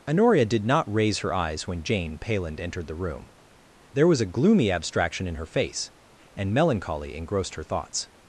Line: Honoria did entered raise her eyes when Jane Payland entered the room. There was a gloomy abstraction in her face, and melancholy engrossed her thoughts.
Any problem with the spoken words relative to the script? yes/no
yes